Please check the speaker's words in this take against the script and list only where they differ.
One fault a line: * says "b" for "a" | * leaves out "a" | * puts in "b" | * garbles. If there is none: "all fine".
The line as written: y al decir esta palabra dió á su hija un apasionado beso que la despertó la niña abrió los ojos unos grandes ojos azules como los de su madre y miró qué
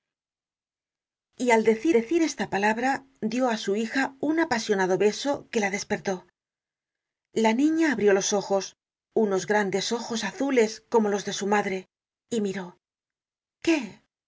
* puts in "decir"